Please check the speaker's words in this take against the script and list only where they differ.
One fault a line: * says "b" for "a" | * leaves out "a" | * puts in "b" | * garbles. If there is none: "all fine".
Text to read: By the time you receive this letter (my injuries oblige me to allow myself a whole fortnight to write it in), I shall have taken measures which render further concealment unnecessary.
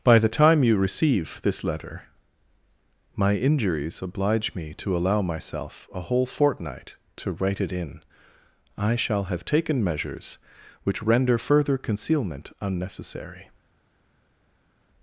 all fine